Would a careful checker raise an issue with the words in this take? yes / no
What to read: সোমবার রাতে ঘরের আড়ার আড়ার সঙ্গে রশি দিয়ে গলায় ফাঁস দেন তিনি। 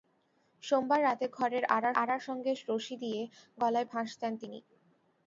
no